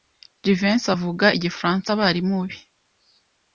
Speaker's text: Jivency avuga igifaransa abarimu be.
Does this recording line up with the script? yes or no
yes